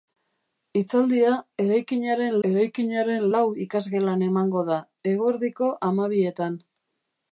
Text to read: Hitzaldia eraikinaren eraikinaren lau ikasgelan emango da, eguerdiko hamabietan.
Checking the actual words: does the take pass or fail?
pass